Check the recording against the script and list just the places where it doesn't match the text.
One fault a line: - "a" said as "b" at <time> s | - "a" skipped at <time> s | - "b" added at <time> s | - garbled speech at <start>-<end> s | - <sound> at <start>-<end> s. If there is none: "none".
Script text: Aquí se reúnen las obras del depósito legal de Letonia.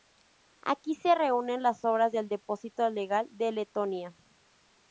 none